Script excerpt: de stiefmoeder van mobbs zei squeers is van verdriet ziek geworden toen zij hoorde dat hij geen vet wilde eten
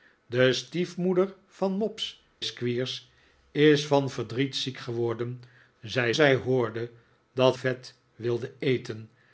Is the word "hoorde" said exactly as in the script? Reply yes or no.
yes